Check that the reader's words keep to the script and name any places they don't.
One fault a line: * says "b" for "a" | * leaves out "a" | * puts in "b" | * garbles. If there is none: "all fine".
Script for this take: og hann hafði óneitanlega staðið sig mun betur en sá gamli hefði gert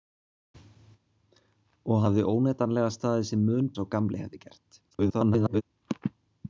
* leaves out "hann"
* leaves out "betur en"
* garbles